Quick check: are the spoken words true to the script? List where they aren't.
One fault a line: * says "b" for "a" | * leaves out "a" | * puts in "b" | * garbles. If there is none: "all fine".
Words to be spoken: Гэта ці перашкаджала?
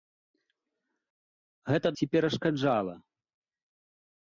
all fine